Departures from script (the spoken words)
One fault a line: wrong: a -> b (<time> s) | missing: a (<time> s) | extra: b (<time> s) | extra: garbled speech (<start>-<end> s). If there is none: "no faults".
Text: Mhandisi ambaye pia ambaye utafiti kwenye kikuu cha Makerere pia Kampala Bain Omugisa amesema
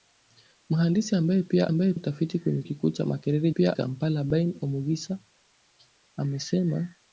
no faults